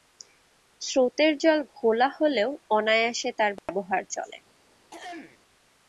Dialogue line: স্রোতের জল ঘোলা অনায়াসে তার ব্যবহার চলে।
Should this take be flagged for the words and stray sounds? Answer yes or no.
yes